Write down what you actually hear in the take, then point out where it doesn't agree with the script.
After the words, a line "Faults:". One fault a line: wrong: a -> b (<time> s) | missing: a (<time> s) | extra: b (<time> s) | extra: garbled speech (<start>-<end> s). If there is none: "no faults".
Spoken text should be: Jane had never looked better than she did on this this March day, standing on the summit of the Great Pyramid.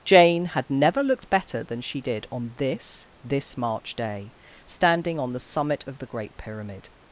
Jane had never looked better than she did on this this March day, standing on the summit of the Great Pyramid.
Faults:
no faults